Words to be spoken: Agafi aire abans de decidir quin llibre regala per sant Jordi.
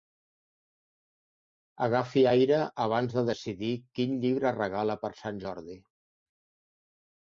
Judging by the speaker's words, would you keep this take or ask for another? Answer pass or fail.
pass